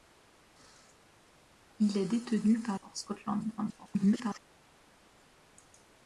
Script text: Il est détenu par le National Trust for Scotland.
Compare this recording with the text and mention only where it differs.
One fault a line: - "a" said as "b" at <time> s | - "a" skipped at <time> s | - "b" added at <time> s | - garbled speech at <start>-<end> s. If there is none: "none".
- "le National Trust" skipped at 2.8 s
- garbled speech at 3.6-4.4 s